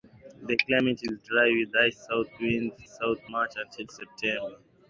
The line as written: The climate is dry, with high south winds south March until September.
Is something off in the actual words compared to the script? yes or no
no